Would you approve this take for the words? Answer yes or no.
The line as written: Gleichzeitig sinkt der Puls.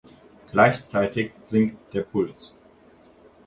yes